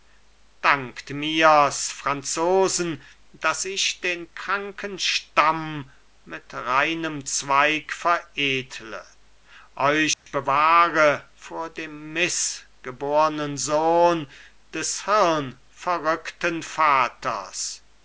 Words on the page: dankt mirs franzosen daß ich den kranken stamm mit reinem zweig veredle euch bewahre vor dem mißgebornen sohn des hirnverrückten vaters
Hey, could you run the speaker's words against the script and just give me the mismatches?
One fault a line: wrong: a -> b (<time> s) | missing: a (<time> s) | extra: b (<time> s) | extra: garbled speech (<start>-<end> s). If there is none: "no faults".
no faults